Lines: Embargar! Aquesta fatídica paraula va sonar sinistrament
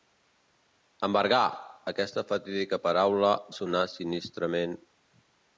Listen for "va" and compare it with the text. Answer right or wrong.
wrong